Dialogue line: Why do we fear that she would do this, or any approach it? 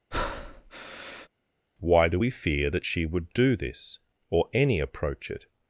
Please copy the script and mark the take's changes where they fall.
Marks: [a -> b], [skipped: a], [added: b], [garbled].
Why do we fear that she would do this, or any approach it?